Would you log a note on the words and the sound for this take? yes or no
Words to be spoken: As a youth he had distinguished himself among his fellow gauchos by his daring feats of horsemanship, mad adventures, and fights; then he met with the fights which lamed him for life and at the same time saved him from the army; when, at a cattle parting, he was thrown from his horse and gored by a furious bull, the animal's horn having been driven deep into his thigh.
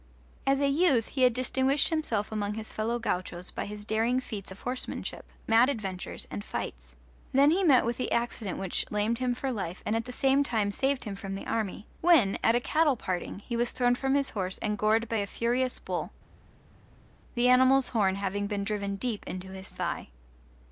yes